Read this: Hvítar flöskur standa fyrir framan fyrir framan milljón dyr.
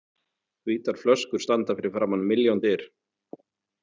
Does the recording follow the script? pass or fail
fail